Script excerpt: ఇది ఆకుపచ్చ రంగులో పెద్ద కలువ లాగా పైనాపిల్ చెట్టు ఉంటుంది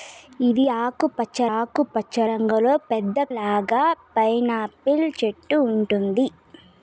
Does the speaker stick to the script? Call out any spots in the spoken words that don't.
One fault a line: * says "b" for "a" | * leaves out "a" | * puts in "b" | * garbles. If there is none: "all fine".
* puts in "ఆకుపచ్చ"
* leaves out "కలువ"